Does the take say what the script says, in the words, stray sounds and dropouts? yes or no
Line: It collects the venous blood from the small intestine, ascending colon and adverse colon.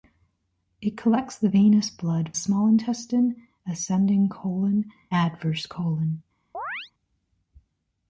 no